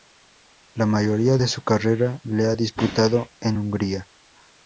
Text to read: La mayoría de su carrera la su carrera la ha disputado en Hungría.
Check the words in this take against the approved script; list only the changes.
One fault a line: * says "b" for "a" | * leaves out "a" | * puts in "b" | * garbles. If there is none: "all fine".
* leaves out "su carrera la"